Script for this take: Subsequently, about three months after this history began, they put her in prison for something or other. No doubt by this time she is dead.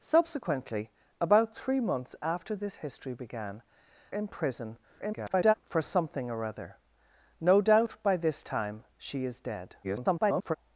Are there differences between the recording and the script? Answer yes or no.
yes